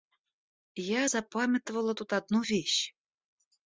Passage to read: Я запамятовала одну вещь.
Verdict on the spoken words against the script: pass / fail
fail